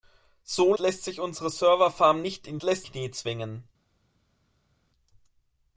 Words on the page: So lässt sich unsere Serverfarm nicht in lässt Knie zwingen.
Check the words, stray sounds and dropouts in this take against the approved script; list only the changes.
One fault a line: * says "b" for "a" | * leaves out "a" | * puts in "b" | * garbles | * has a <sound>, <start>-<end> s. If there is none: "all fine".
all fine